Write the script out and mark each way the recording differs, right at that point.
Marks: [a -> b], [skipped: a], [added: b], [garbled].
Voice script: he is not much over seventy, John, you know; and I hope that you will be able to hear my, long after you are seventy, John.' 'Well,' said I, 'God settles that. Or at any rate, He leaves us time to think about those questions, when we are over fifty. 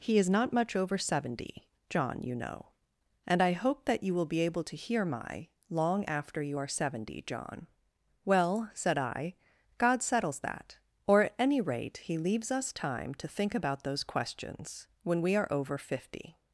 he is not much over seventy, John, you know; and I hope that you will be able to hear my, long after you are seventy, John.' 'Well,' said I, 'God settles that. Or at any rate, He leaves us time to think about those questions, when we are over fifty.